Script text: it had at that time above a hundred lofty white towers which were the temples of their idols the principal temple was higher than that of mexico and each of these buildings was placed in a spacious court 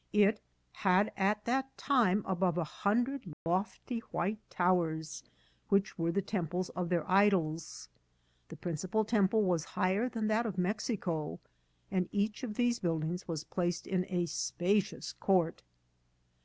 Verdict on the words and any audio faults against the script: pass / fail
fail